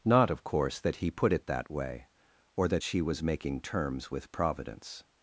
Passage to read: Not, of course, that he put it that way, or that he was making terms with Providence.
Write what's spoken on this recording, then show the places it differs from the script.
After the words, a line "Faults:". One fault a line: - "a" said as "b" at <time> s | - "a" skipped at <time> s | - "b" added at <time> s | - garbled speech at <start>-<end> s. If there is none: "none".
Not, of course, that he put it that way, or that she was making terms with Providence.
Faults:
- "he" said as "she" at 2.8 s